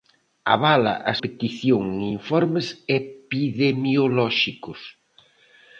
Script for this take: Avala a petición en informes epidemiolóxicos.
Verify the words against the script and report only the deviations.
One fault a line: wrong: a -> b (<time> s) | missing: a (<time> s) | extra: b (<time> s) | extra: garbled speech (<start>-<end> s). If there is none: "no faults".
no faults